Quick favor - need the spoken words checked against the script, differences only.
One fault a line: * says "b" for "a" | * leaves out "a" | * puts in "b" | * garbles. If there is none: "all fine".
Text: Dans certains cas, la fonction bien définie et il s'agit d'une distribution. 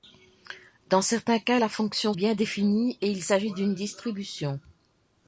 all fine